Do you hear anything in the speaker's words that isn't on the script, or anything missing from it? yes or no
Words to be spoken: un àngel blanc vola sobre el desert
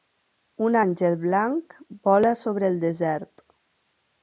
no